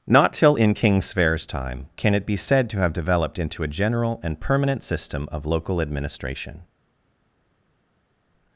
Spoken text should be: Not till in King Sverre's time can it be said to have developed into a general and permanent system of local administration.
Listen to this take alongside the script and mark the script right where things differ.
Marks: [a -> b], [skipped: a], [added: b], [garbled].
Not till in King Sverre's time can it be said to have developed into a general and permanent system of local administration.